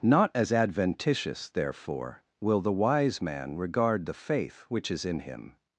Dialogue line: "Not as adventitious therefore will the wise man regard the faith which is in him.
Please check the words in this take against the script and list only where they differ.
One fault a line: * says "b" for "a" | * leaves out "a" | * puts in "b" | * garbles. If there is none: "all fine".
all fine